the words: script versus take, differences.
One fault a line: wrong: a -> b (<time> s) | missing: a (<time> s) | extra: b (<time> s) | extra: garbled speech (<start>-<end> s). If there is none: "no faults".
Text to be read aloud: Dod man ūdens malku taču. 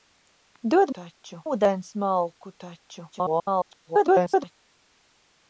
wrong: man -> taču (1.0 s)
extra: garbled speech (3.1-4.6 s)